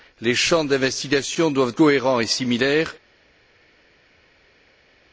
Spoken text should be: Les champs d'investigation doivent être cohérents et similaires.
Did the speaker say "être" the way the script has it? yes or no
no